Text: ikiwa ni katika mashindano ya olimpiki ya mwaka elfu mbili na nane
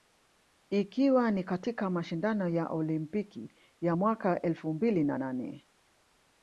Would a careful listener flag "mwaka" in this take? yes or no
no